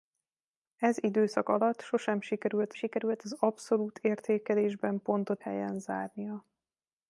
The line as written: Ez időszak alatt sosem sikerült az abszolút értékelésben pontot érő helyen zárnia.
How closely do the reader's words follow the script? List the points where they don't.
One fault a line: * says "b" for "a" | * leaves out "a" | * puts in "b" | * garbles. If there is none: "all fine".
* puts in "sikerült"
* leaves out "érő"